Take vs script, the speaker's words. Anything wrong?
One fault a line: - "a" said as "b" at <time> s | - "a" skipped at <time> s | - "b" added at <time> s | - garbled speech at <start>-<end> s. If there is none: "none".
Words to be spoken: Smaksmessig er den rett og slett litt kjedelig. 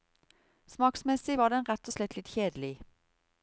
- "er" said as "var" at 1.4 s